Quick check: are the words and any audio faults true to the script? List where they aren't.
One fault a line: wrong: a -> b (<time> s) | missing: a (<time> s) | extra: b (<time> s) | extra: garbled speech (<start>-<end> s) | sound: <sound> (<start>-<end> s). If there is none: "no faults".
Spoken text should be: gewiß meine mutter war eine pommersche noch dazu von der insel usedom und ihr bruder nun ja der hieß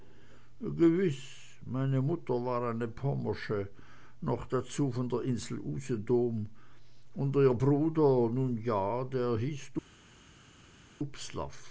no faults